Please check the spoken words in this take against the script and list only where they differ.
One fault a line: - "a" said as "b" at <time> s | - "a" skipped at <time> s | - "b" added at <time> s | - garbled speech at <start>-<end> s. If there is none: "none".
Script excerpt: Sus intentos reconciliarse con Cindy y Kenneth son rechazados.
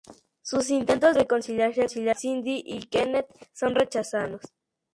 none